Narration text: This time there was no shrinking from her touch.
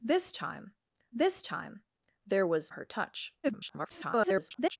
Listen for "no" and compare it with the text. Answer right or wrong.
wrong